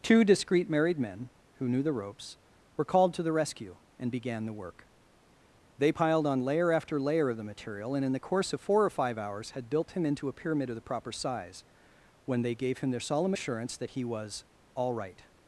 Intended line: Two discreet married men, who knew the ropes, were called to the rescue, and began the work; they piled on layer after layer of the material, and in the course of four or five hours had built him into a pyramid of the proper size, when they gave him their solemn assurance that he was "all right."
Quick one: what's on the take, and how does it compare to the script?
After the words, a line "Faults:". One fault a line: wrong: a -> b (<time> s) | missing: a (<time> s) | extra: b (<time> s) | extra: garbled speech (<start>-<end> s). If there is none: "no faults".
Two discreet married men, who knew the ropes, were called to the rescue, and began the work; they piled on layer after layer of the material, and in the course of four or five hours had built him into a pyramid of the proper size, when they gave him their solemn assurance that he was "all right."
Faults:
no faults